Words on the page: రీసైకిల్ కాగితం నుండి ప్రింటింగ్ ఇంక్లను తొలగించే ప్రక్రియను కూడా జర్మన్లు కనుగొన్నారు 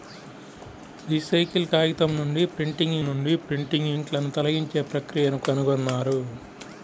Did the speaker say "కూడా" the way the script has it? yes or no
no